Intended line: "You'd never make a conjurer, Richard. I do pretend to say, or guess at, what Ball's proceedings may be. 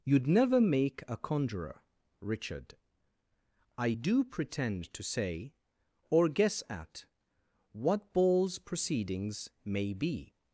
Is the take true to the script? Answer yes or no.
yes